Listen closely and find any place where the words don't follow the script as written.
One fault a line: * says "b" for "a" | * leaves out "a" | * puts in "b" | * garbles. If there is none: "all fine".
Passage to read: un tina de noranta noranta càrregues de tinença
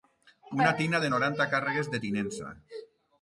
* says "una" for "un"
* leaves out "noranta"